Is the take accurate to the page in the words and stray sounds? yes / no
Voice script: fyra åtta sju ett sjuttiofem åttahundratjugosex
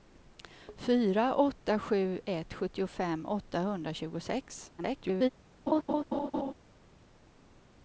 no